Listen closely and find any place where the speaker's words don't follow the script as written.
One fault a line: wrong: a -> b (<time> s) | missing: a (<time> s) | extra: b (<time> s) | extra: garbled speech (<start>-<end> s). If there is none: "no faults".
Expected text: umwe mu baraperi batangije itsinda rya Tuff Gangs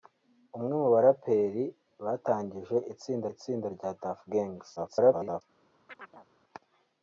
extra: itsinda (3.3 s)
extra: garbled speech (4.8-5.4 s)